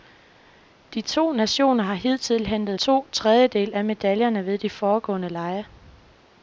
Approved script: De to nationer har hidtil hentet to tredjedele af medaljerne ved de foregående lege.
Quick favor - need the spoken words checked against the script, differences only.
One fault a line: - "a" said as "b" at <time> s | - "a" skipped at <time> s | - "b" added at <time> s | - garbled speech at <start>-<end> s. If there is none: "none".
none